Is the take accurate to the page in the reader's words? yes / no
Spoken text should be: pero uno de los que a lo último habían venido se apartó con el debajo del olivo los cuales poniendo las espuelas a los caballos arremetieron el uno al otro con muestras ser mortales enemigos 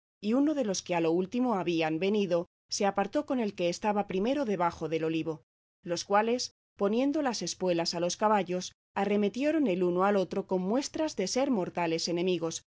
no